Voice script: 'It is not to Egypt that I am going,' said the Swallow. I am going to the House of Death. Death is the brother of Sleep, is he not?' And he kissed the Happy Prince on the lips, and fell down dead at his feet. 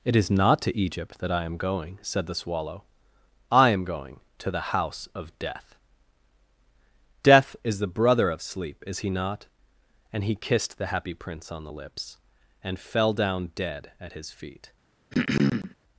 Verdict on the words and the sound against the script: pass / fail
fail